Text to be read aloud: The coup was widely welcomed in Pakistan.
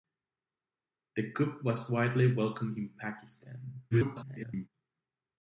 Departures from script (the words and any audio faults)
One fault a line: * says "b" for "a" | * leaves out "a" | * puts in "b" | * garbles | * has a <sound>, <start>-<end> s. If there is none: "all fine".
* garbles